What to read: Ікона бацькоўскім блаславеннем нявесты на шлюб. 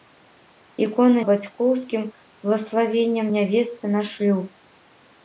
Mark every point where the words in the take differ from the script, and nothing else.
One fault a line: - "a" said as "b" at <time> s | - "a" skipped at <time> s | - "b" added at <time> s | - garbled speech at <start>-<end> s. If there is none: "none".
none